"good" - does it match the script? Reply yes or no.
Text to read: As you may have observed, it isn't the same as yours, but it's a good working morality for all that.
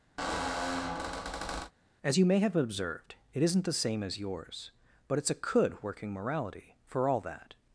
no